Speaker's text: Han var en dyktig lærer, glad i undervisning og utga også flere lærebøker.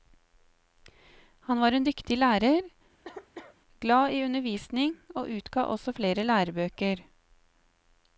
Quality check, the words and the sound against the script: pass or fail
fail